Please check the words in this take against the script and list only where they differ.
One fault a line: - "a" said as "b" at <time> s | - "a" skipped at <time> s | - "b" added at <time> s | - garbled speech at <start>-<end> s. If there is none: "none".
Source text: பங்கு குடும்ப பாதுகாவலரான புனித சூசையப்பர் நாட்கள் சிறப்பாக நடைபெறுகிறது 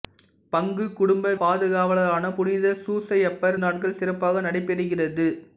none